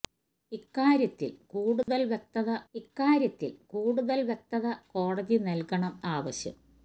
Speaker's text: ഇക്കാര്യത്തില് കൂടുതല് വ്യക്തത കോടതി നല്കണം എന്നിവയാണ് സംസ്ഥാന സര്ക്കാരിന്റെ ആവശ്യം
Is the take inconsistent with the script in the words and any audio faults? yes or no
yes